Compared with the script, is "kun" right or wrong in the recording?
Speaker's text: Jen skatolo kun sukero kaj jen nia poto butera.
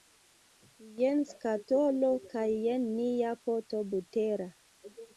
wrong